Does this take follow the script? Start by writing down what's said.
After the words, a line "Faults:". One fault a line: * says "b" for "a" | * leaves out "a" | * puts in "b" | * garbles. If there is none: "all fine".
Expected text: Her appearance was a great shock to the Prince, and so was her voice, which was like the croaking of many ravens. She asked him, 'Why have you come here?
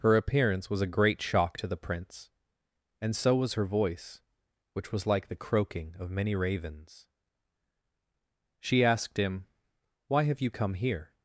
Her appearance was a great shock to the Prince, and so was her voice, which was like the croaking of many ravens. She asked him, 'Why have you come here?
Faults:
all fine